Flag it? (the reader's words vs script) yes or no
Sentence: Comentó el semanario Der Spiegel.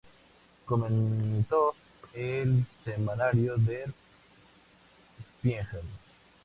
no